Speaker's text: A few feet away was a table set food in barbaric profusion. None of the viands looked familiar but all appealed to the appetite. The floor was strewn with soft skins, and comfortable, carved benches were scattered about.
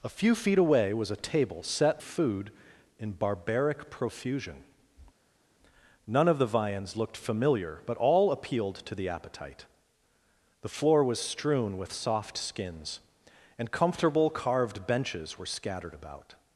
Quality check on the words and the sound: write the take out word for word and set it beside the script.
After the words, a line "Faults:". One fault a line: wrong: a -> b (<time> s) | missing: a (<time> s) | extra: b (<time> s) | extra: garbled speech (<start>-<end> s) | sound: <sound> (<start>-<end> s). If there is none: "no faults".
A few feet away was a table set food in barbaric profusion. None of the viands looked familiar but all appealed to the appetite. The floor was strewn with soft skins, and comfortable, carved benches were scattered about.
Faults:
no faults